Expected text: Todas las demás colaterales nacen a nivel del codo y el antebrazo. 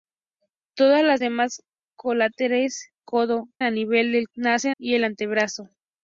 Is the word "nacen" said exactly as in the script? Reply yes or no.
no